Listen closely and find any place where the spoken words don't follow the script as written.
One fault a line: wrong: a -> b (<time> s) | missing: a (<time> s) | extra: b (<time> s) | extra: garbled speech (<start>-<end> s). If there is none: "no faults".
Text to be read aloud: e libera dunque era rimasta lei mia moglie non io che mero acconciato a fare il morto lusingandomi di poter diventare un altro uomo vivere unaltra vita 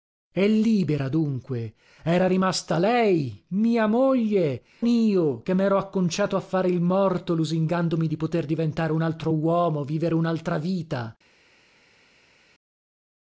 missing: non (4.6 s)